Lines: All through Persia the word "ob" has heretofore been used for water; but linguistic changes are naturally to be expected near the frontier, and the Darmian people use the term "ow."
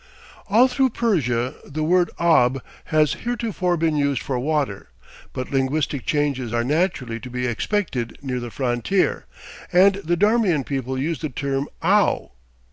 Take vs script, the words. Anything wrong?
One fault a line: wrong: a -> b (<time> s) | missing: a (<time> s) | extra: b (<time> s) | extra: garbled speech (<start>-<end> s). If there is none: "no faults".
no faults